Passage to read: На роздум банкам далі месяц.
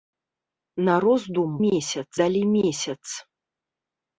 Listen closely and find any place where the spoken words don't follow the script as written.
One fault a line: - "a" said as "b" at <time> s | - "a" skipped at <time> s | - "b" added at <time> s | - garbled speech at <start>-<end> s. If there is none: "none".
- "банкам" said as "месяц" at 1.7 s